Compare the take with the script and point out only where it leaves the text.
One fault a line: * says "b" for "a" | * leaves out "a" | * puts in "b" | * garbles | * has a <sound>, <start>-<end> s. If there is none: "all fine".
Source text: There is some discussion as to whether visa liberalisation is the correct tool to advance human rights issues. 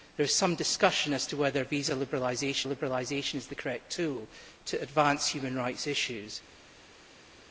* puts in "liberalisation"